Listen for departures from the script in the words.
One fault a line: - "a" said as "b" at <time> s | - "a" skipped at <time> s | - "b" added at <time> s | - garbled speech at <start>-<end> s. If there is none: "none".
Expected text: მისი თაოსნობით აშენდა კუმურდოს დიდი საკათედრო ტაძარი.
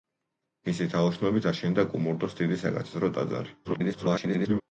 - garbled speech at 3.6-4.6 s